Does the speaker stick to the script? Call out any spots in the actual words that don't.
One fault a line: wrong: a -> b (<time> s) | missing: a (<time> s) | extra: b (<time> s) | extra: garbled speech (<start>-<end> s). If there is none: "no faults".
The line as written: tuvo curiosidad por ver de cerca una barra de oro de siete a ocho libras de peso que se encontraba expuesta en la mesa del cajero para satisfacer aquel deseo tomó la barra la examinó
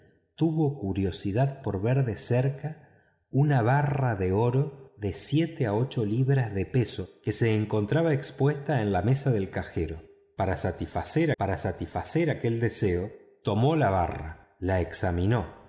extra: para satisfacer (11.4 s)